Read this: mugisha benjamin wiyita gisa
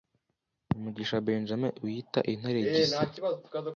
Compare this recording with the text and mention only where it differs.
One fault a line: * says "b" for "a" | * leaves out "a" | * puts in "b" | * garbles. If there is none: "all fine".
* puts in "intare"